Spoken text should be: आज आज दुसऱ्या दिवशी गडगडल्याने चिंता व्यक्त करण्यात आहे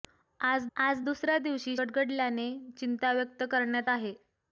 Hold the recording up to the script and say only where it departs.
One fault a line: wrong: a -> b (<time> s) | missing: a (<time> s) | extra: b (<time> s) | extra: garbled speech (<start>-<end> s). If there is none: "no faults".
no faults